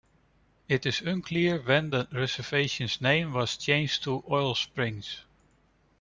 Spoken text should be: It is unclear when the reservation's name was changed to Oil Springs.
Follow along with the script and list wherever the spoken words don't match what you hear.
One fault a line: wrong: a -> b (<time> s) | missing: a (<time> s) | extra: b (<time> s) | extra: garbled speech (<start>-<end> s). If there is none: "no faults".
no faults